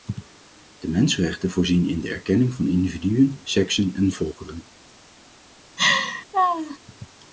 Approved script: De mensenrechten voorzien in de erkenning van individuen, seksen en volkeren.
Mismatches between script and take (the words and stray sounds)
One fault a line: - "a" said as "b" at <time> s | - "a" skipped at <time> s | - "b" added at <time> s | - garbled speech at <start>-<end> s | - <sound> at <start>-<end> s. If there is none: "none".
- laugh at 5.8-6.8 s